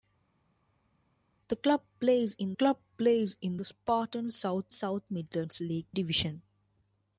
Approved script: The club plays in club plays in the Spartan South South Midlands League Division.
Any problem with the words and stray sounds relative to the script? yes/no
no